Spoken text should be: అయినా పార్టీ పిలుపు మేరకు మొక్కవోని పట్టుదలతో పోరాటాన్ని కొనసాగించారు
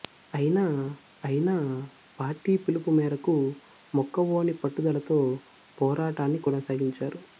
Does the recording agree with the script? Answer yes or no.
no